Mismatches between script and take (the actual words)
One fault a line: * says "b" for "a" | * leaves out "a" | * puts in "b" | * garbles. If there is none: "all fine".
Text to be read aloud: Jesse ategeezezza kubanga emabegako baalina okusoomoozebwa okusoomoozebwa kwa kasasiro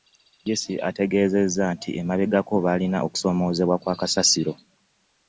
* says "nti" for "kubanga"
* leaves out "okusoomoozebwa"